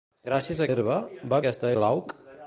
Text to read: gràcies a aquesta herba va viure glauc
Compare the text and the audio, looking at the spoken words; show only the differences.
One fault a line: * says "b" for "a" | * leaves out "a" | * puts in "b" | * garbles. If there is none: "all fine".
* leaves out "aquesta"
* says "aquesta" for "viure"